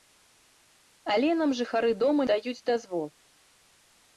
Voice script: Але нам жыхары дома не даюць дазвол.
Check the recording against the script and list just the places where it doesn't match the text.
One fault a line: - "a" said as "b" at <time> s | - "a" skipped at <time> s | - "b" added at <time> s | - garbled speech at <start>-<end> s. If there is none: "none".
- "не" skipped at 2.3 s